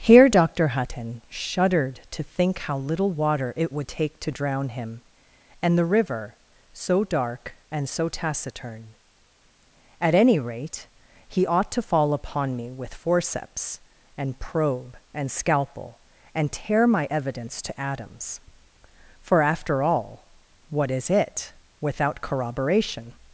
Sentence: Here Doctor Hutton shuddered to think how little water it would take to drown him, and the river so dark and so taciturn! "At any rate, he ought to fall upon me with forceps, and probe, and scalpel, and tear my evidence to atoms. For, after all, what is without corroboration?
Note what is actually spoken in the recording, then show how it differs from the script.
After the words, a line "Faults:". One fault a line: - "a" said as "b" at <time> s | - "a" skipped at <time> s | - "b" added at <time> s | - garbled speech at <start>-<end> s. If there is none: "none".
Here Doctor Hutton shuddered to think how little water it would take to drown him, and the river so dark and so taciturn! "At any rate, he ought to fall upon me with forceps, and probe, and scalpel, and tear my evidence to atoms. For, after all, what is it, without corroboration?
Faults:
- "it" added at 21.1 s